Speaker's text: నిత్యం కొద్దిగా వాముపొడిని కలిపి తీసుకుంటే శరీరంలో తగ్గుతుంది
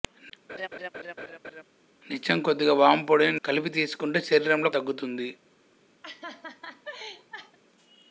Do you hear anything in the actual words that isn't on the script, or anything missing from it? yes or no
no